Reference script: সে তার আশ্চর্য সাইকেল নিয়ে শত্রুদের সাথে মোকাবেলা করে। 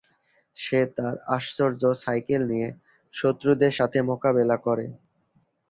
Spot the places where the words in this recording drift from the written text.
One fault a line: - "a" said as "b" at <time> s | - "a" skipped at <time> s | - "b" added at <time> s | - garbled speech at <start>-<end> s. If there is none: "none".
none